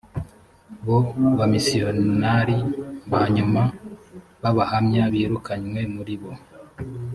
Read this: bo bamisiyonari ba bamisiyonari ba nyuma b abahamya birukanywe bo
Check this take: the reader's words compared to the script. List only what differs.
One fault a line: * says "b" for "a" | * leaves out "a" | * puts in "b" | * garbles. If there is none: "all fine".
* leaves out "bamisiyonari ba"
* puts in "muri"